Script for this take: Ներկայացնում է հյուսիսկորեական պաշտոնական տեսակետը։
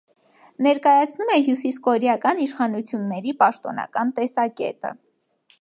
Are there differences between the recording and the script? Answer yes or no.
yes